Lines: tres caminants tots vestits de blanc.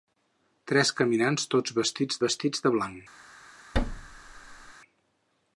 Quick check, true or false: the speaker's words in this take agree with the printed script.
false